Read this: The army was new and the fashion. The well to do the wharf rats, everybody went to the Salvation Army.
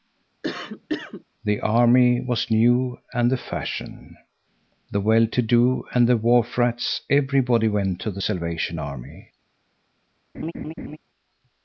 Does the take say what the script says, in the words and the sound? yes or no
no